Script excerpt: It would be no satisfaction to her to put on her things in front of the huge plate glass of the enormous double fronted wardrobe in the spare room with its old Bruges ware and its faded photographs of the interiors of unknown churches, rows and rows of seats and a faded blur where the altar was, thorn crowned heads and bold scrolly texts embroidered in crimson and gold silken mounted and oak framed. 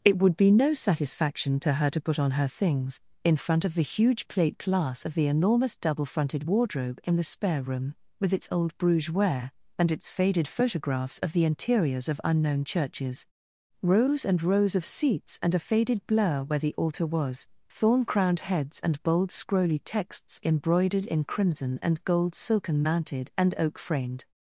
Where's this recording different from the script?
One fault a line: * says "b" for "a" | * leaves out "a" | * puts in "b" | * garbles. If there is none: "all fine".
all fine